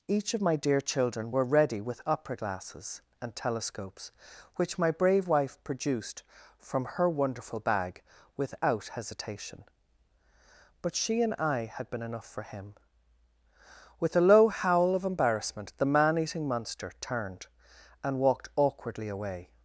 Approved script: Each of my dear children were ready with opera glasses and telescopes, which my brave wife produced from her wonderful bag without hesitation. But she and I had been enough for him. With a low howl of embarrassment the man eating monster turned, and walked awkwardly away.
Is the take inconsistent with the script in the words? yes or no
no